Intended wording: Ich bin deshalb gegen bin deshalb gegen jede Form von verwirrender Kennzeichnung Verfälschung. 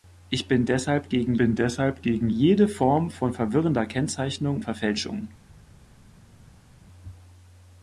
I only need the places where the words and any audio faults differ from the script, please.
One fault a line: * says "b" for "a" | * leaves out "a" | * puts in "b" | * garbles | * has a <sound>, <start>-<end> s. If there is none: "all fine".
all fine